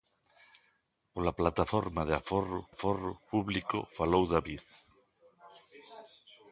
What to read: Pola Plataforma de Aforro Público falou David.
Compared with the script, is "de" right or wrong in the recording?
right